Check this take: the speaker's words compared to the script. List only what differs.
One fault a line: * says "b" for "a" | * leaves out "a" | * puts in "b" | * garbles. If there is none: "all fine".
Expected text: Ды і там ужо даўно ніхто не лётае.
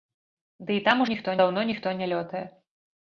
* says "ніхто" for "ужо"